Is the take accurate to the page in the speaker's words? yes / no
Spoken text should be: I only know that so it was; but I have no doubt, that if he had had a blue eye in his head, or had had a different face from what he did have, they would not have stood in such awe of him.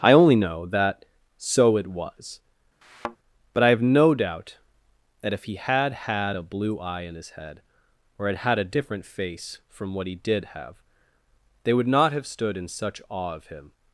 yes